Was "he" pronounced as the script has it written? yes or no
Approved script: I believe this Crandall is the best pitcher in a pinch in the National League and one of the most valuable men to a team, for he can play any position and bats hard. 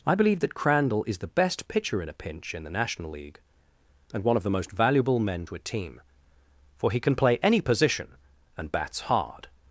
yes